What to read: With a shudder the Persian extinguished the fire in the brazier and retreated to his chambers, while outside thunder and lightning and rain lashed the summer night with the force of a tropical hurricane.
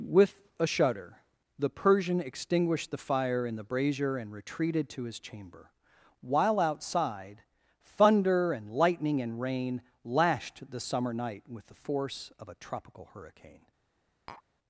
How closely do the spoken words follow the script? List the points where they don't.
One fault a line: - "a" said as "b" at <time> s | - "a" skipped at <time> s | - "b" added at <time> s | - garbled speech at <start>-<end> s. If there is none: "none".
- "chambers" said as "chamber" at 5.2 s